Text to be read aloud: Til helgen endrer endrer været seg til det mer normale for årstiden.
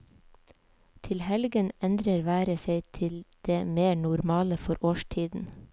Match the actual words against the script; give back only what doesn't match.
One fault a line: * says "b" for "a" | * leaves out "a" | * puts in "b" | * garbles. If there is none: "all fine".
* leaves out "endrer"